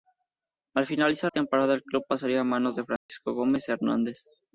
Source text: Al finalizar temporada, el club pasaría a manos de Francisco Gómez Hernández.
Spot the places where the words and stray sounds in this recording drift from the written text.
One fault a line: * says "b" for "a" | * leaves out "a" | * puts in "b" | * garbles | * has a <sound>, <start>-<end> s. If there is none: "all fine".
* has a dropout, 3.0-3.1 s